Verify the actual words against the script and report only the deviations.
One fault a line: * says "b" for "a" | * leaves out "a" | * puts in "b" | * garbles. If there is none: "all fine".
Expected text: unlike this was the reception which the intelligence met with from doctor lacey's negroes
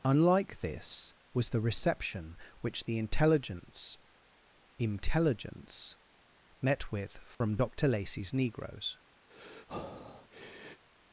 * puts in "intelligence"